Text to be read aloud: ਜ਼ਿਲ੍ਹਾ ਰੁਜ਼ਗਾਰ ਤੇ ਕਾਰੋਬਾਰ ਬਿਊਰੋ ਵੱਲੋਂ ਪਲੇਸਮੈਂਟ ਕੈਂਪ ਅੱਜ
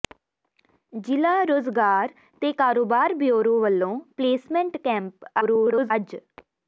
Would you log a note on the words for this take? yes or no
yes